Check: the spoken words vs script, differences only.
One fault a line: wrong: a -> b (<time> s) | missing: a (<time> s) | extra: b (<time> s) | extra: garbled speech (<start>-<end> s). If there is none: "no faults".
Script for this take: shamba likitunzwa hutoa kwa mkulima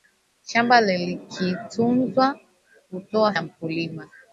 no faults